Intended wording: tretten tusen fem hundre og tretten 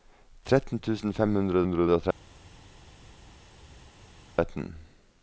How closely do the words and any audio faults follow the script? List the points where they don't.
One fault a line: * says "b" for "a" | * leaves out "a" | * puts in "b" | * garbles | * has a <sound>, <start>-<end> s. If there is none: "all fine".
* puts in "hundre"